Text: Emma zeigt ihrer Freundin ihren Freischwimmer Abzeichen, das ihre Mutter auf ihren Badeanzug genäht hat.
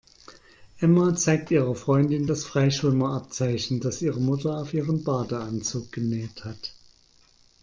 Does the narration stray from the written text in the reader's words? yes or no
yes